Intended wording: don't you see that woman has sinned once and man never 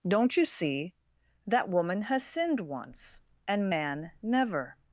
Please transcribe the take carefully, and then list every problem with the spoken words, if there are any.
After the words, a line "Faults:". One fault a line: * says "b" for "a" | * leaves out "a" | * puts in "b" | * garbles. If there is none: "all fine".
don't you see that woman has sinned once and man never
Faults:
all fine